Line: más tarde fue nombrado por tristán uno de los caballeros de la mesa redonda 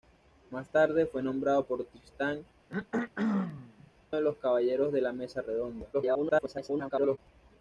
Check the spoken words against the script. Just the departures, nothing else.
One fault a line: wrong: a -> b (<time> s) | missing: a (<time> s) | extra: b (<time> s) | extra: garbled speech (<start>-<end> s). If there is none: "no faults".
missing: uno (2.4 s)
extra: garbled speech (5.9-7.2 s)